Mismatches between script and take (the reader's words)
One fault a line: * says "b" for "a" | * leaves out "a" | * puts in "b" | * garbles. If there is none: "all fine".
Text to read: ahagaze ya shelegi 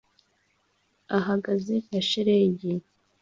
all fine